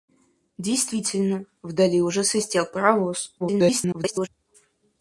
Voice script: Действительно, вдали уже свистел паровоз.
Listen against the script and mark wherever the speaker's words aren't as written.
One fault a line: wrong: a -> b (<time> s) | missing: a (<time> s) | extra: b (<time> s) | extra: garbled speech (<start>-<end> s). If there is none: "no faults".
extra: garbled speech (3.4-4.3 s)